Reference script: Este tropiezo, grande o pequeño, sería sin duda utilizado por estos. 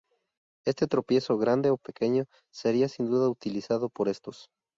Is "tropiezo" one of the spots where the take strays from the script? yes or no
no